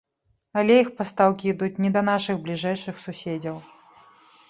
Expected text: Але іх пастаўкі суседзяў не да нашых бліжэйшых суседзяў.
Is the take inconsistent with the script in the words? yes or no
yes